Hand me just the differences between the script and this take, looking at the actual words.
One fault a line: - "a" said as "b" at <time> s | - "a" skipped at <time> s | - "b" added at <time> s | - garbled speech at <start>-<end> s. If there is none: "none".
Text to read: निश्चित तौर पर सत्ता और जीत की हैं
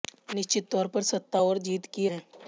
none